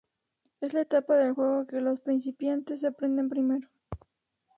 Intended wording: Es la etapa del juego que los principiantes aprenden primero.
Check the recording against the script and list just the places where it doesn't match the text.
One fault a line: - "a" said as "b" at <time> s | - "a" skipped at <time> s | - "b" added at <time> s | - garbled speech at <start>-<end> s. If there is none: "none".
none